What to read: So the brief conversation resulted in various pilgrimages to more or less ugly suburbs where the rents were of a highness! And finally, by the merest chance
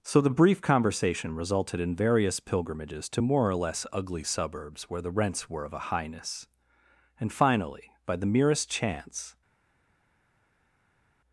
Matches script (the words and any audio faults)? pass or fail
pass